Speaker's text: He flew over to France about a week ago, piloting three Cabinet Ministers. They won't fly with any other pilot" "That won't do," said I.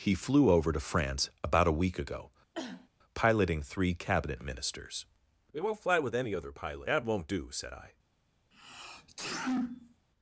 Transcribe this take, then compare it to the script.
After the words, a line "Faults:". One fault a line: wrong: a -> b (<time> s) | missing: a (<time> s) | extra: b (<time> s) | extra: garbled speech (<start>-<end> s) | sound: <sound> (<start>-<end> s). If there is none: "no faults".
He flew over to France about a week ago, piloting three Cabinet Ministers. We won't fly with any other pilot" "That won't do," said I.
Faults:
sound: cough (2.5-2.9 s)
wrong: They -> We (5.5 s)
sound: sneeze (8.5-10.1 s)